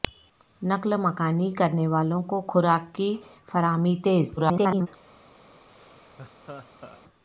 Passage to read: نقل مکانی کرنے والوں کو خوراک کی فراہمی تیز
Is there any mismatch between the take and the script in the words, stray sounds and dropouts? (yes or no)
yes